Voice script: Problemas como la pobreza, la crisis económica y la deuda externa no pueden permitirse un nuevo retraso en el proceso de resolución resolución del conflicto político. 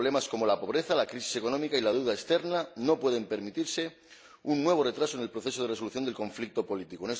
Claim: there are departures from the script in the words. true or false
true